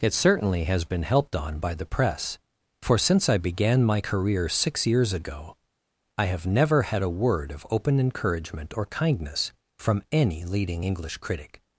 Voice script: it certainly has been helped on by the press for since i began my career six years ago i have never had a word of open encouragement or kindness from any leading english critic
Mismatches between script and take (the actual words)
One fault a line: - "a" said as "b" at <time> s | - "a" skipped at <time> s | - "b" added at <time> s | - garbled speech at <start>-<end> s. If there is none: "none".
none